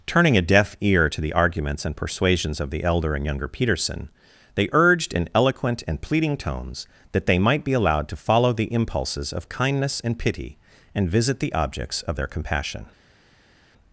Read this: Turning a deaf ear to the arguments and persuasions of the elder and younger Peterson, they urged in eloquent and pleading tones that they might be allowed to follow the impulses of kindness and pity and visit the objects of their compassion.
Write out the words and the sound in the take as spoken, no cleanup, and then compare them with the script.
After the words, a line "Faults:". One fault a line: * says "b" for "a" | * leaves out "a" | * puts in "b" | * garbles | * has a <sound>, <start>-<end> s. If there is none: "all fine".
Turning a deaf ear to the arguments and persuasions of the elder and younger Peterson, they urged in eloquent and pleading tones that they might be allowed to follow the impulses of kindness and pity and visit the objects of their compassion.
Faults:
all fine